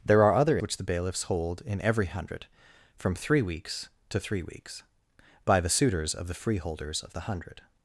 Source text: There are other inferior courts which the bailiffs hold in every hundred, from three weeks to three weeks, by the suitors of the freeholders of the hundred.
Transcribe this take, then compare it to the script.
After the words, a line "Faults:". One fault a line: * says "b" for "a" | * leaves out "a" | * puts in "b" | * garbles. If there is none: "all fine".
There are other which the bailiffs hold in every hundred, from three weeks to three weeks, by the suitors of the freeholders of the hundred.
Faults:
* leaves out "inferior courts"